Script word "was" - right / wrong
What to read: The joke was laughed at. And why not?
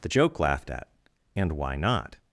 wrong